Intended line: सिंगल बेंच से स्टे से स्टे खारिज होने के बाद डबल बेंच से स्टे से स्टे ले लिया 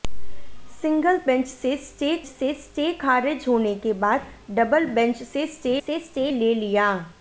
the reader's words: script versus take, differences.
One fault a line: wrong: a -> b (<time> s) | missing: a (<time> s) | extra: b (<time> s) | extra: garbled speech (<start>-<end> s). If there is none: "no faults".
no faults